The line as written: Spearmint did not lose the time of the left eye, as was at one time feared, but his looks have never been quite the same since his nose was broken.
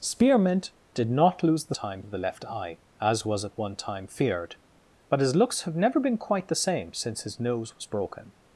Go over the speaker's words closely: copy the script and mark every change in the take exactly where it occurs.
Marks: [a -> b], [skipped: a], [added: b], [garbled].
Spearmint did not lose the time of the left eye, as was at one time feared, but his looks have never been quite the same since his nose was broken.